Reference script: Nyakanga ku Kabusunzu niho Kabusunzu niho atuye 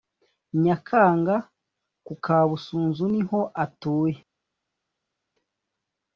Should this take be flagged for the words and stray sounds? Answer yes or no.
yes